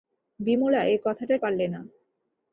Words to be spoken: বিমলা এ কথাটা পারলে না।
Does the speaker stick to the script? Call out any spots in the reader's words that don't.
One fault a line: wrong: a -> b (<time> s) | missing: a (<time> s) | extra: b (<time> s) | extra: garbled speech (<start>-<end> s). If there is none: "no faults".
no faults